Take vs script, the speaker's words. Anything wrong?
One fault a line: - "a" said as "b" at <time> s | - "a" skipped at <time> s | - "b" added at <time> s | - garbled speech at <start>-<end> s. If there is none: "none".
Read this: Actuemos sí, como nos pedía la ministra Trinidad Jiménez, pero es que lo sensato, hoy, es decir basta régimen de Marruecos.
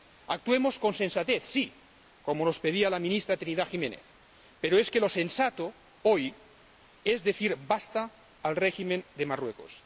- "con sensatez" added at 0.8 s
- "al" added at 8.4 s